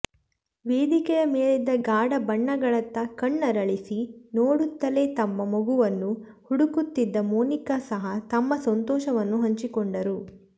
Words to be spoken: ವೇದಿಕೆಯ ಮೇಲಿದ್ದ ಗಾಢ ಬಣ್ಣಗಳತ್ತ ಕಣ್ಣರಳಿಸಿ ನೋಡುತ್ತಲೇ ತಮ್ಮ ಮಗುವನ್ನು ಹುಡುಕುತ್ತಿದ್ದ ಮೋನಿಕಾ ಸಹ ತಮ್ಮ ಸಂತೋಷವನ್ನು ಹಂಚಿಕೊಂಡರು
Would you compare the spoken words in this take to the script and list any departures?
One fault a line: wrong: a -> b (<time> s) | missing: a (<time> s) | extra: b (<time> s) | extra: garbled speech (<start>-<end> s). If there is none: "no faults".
no faults